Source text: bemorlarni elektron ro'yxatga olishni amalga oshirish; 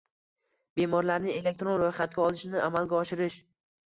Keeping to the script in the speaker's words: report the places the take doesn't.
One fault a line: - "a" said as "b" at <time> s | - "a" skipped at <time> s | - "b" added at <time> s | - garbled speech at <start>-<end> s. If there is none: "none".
none